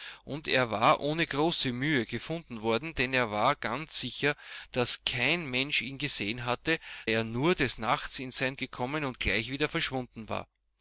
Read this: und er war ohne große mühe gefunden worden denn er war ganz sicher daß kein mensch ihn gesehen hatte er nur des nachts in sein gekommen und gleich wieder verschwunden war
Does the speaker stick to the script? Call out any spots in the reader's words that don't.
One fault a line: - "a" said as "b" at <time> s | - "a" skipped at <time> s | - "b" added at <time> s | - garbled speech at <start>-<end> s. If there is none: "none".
none